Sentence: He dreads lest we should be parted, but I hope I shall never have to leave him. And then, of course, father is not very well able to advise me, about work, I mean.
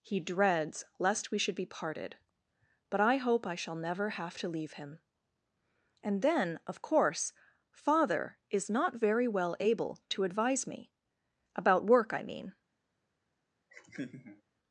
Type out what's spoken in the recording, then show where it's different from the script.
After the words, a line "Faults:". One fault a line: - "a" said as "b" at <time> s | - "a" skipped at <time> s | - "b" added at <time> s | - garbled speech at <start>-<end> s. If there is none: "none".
He dreads lest we should be parted, but I hope I shall never have to leave him. And then, of course, father is not very well able to advise me, about work, I mean.
Faults:
none